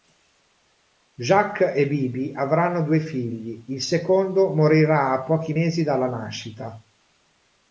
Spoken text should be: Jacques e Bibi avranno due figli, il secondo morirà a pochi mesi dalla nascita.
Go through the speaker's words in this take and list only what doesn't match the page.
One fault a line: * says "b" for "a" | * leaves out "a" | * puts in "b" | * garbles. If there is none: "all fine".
all fine